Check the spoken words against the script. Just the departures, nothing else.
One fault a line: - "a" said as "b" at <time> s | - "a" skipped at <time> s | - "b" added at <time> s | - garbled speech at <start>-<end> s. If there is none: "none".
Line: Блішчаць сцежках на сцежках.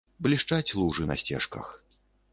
- "сцежках" said as "лужы" at 0.8 s